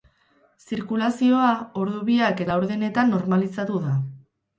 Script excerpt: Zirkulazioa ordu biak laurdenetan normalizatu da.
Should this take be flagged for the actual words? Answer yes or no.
no